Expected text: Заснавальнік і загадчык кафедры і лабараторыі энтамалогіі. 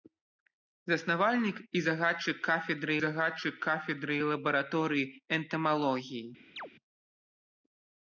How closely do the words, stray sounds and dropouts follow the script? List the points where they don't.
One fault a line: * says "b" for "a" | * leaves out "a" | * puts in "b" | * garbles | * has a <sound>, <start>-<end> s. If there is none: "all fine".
* puts in "загадчык кафедры"
* has a chirp, 6.6-6.7 s